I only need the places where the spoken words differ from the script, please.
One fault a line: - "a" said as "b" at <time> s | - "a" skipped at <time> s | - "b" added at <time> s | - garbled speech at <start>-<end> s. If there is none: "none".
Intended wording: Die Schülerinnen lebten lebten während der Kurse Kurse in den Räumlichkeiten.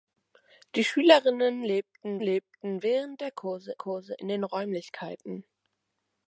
none